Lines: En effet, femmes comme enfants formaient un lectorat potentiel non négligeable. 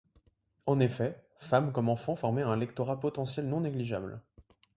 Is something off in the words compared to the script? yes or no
no